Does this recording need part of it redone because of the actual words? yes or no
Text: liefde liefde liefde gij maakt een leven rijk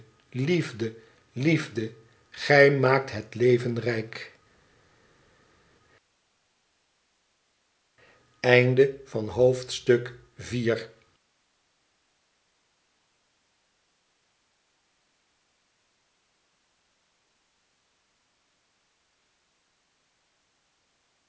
yes